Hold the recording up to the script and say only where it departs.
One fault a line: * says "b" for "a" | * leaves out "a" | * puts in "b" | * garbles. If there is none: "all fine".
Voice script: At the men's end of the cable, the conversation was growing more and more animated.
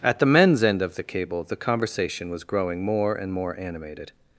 all fine